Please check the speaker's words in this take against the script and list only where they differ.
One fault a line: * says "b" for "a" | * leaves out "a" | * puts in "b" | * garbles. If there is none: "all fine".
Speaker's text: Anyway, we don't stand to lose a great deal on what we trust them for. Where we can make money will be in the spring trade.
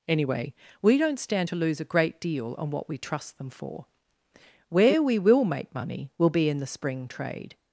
* says "will" for "can"